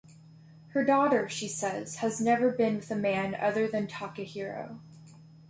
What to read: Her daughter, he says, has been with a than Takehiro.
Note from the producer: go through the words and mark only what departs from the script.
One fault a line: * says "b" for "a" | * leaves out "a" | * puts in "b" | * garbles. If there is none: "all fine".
* says "she" for "he"
* puts in "never"
* puts in "man other"